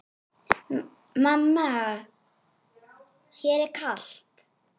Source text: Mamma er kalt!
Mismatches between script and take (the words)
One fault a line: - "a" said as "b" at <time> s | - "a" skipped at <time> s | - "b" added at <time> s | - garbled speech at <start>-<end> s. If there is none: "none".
- "mér" added at 3.4 s